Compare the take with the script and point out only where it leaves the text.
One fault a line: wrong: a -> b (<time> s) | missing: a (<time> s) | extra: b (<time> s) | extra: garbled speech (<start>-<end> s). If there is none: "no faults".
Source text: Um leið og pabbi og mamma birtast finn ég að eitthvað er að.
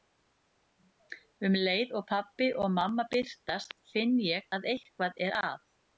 no faults